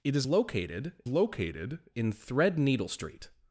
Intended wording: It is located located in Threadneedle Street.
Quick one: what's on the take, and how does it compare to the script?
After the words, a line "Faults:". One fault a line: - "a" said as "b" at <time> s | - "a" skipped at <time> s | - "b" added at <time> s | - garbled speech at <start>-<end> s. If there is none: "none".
It is located located in Threadneedle Street.
Faults:
none